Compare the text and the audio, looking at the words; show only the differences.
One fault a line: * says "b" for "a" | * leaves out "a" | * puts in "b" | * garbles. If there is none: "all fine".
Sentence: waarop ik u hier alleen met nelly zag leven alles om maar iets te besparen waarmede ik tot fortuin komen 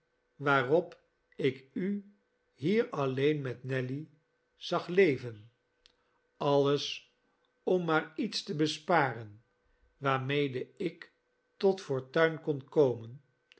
* puts in "kon"